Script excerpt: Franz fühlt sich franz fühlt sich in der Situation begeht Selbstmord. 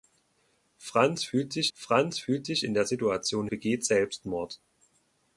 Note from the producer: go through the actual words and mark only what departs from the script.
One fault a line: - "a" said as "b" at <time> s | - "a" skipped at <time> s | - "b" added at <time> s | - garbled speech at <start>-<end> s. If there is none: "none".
none